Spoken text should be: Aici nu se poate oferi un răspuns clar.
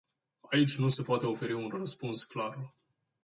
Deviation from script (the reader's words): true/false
false